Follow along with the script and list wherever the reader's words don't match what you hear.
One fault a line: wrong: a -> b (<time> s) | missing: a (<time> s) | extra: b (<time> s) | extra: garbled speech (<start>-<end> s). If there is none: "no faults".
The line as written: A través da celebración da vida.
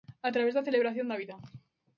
no faults